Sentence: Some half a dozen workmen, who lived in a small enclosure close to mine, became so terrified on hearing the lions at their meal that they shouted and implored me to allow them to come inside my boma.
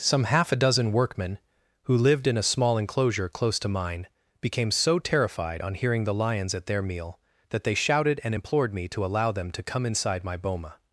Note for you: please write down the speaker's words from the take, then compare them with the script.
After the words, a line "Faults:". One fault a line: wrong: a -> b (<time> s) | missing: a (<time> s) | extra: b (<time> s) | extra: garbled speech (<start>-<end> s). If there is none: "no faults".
Some half a dozen workmen, who lived in a small enclosure close to mine, became so terrified on hearing the lions at their meal that they shouted and implored me to allow them to come inside my boma.
Faults:
no faults